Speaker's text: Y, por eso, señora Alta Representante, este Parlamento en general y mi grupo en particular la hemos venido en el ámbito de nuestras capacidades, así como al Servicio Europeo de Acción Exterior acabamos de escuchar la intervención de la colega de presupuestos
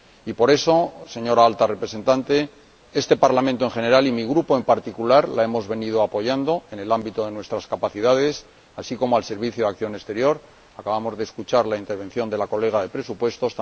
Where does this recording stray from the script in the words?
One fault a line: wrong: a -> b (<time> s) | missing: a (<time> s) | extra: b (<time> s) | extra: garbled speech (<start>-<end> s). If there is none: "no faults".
extra: apoyando (6.0 s)